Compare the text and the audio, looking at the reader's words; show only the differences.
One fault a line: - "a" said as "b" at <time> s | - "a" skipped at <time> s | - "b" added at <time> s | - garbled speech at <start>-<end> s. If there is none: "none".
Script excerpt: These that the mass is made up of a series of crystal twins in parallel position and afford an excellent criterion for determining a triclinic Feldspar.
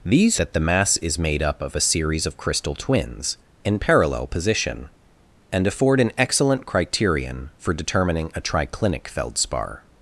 none